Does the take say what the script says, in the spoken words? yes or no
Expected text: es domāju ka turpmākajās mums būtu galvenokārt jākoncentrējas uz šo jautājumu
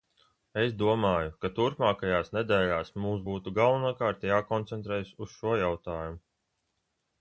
no